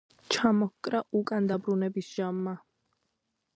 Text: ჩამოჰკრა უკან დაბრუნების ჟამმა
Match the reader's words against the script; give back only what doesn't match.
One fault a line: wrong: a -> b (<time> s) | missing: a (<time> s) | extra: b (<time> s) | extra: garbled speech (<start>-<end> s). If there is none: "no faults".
no faults